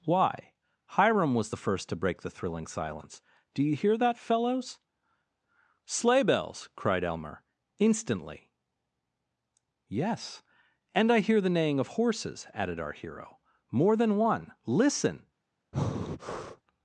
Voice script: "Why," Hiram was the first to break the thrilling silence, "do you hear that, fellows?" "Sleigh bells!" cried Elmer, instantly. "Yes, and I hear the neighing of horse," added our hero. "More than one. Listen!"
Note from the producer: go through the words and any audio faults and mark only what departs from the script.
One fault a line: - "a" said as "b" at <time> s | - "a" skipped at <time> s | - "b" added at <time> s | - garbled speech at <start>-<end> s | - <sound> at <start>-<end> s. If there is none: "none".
- "horse" said as "horses" at 11.9 s
- breath at 15.7-16.6 s